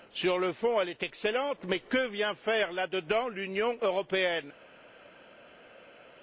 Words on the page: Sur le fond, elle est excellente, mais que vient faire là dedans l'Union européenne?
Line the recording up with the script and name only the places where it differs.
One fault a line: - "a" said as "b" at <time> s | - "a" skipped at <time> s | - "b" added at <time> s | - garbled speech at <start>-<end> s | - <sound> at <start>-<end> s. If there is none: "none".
none